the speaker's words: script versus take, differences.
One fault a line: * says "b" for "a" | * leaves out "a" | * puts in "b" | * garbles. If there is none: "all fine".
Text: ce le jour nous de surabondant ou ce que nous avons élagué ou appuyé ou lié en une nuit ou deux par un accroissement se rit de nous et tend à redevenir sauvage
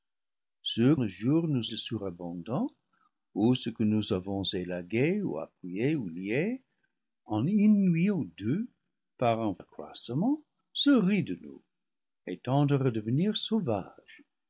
all fine